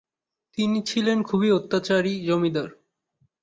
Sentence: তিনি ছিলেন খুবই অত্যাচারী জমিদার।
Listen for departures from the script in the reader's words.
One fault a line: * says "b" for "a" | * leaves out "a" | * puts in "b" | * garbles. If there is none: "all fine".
all fine